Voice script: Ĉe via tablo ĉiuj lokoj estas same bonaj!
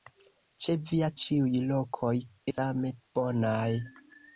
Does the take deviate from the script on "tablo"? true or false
true